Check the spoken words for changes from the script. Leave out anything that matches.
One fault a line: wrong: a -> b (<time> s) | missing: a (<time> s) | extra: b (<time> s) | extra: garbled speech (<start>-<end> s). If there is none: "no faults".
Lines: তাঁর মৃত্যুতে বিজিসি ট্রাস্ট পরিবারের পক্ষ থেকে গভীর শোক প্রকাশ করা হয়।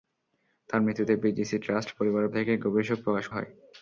missing: পক্ষ (2.3 s)
missing: করা (3.3 s)